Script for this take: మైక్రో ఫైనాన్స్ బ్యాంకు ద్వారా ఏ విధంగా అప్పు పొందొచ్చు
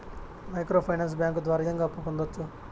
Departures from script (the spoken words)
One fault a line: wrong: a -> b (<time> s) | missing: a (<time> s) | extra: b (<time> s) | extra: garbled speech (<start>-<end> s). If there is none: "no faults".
missing: ఏ (1.6 s)